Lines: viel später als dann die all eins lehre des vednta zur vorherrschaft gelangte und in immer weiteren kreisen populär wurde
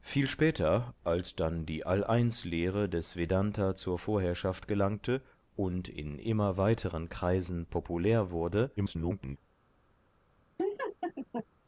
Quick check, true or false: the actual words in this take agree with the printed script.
false